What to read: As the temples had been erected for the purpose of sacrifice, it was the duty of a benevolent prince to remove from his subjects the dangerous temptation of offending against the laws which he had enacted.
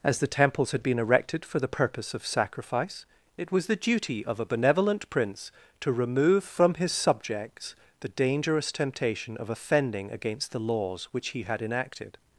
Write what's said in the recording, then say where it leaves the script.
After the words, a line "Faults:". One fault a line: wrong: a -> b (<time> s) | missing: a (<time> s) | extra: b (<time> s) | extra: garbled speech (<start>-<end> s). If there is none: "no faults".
As the temples had been erected for the purpose of sacrifice, it was the duty of a benevolent prince to remove from his subjects the dangerous temptation of offending against the laws which he had enacted.
Faults:
no faults